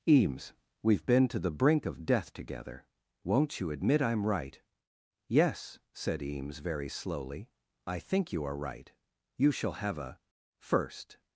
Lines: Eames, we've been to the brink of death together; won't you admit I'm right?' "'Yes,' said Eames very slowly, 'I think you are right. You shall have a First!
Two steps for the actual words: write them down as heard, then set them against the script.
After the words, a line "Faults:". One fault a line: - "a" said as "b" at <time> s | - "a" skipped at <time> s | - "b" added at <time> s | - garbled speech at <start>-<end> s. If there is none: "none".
Eames, we've been to the brink of death together; won't you admit I'm right?' "'Yes,' said Eames very slowly, 'I think you are right. You shall have a First!
Faults:
none